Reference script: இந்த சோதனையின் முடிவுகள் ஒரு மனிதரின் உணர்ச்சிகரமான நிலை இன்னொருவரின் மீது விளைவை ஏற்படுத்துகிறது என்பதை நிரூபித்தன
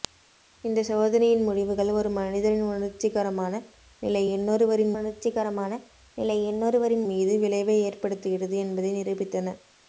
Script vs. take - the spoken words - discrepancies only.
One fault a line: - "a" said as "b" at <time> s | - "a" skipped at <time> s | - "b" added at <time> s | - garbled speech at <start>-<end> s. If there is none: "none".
- "உணர்ச்சிகரமான நிலை இன்னொருவரின்" added at 4.9 s